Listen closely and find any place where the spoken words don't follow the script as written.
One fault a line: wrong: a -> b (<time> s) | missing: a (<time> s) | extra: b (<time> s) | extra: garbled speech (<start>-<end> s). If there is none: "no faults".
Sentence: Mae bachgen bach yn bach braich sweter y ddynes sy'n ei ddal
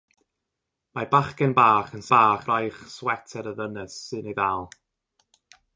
no faults